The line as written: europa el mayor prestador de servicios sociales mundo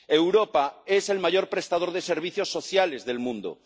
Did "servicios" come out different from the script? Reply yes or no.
no